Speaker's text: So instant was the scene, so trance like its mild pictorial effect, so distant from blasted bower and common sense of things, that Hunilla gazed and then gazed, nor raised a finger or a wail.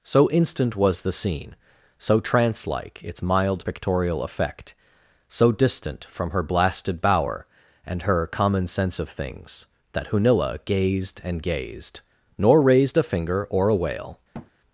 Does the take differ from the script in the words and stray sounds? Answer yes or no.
yes